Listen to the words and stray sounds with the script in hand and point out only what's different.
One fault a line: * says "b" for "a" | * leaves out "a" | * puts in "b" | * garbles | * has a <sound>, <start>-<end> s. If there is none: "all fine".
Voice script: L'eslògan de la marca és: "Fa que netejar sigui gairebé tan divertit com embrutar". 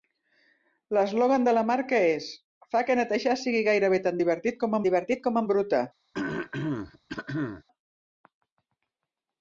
* puts in "divertit com"
* has a throat clearing, 6.1-7.6 s